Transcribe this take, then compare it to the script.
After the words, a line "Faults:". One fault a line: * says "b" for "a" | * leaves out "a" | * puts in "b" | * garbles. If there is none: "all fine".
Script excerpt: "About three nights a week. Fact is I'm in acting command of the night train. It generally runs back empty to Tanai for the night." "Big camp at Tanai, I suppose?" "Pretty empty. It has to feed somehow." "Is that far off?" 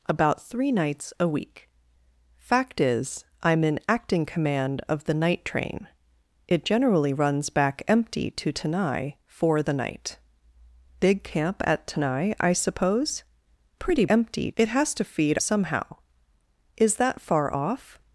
"About three nights a week. Fact is I'm in acting command of the night train. It generally runs back empty to Tanai for the night." "Big camp at Tanai, I suppose?" "Pretty empty. It has to feed somehow." "Is that far off?"
Faults:
all fine